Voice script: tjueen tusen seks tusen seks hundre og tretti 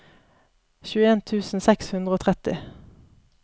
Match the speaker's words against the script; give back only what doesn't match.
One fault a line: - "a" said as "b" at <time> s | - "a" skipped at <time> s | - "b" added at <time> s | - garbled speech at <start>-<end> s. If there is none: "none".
- "tusen seks" skipped at 1.9 s